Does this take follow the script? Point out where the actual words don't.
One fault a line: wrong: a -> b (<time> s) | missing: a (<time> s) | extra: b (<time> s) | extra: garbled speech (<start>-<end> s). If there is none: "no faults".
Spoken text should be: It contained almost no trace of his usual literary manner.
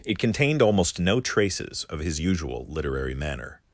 wrong: trace -> traces (1.2 s)